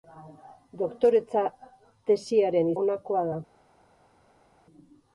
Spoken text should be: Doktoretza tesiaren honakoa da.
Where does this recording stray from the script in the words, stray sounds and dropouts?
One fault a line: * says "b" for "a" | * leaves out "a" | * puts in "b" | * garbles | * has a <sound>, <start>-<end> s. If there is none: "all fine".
all fine